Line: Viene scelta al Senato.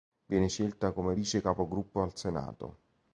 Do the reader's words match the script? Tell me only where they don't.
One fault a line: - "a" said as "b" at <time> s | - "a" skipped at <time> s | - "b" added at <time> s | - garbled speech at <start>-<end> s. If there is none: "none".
- "come vice capogruppo" added at 0.9 s